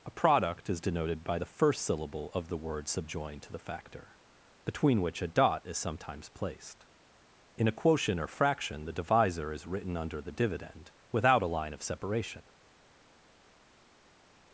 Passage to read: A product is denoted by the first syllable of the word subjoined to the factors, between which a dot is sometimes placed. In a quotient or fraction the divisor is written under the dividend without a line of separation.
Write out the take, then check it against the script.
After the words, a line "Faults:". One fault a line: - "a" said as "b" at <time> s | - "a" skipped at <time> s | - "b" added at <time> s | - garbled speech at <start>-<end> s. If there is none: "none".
A product is denoted by the first syllable of the word subjoined to the factor, between which a dot is sometimes placed. In a quotient or fraction the divisor is written under the dividend without a line of separation.
Faults:
- "factors" said as "factor" at 3.6 s